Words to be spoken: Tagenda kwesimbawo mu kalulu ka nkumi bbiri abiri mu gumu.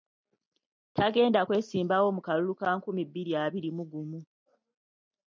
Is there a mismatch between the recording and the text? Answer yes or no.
no